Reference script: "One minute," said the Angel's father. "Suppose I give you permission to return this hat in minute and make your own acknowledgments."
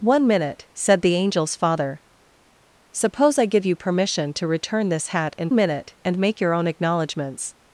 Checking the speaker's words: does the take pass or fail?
pass